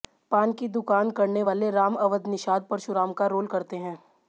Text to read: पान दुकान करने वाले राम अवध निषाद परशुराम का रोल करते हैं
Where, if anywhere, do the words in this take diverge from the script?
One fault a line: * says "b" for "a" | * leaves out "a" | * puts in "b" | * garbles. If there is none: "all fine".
* puts in "की"